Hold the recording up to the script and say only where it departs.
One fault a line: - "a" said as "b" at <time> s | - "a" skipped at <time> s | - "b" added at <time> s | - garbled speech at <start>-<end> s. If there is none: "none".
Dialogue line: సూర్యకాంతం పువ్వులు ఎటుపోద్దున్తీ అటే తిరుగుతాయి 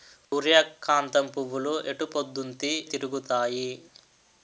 - "అటే" skipped at 2.7 s